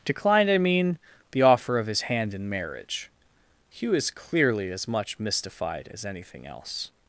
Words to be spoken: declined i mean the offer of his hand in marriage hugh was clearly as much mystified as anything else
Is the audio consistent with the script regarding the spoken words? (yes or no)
no